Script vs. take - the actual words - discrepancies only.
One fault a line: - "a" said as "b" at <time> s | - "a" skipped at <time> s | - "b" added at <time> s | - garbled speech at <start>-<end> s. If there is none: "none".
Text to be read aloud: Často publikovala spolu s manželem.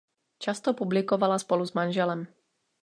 none